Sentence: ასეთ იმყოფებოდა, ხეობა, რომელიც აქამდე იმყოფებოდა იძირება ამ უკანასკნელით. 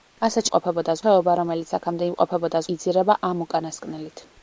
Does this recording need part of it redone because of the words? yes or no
no